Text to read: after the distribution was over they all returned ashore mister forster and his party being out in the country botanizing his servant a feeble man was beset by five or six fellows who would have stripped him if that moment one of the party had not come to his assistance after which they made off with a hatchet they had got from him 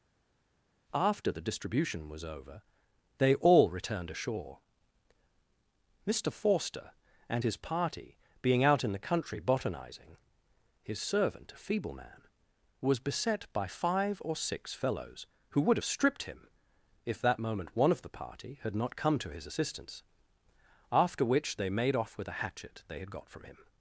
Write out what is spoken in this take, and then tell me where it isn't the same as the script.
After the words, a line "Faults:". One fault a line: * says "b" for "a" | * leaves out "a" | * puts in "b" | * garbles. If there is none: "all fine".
after the distribution was over they all returned ashore mister forster and his party being out in the country botanizing his servant a feeble man was beset by five or six fellows who would have stripped him if that moment one of the party had not come to his assistance after which they made off with a hatchet they had got from him
Faults:
all fine